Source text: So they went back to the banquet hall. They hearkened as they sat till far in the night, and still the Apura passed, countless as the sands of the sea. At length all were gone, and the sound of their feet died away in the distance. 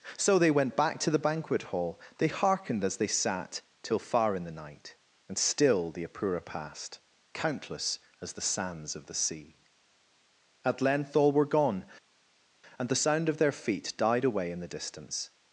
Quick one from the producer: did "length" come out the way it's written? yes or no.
yes